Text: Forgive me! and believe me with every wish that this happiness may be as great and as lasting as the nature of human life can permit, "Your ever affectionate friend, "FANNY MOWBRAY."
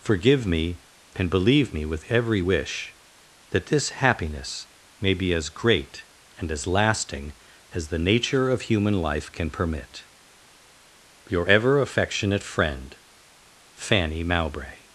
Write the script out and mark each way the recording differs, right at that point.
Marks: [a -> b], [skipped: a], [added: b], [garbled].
Forgive me! and believe me with every wish that this happiness may be as great and as lasting as the nature of human life can permit, "Your ever affectionate friend, "FANNY MOWBRAY."